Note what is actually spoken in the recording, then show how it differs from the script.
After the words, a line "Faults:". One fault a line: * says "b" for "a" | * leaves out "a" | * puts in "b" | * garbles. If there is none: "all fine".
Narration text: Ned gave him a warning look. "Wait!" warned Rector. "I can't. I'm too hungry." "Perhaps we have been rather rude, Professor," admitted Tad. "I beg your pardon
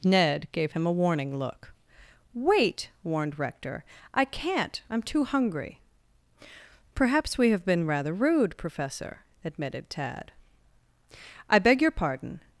Ned gave him a warning look. "Wait!" warned Rector. "I can't. I'm too hungry." "Perhaps we have been rather rude, Professor," admitted Tad. "I beg your pardon
Faults:
all fine